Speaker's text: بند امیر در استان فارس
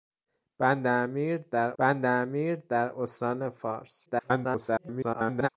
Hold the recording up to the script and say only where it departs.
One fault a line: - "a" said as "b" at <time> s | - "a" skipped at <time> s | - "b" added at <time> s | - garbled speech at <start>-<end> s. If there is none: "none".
- "بند امیر در" added at 1.8 s
- garbled speech at 4.1-5.5 s